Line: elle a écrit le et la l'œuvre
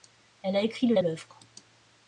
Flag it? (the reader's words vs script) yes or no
no